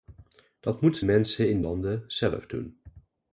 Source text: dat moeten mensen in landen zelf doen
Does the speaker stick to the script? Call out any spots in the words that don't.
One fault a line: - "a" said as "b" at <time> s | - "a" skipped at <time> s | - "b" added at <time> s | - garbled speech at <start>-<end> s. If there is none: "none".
none